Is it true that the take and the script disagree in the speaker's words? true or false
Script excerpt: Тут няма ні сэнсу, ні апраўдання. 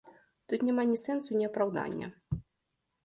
false